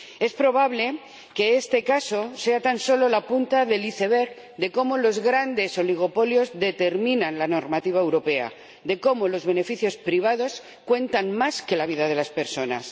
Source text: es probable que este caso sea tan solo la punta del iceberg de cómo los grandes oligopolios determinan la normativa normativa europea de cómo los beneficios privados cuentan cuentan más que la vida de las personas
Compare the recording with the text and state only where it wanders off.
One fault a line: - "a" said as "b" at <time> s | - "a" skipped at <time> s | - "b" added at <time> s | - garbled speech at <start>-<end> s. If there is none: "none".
- "normativa" skipped at 8.0 s
- "cuentan" skipped at 11.3 s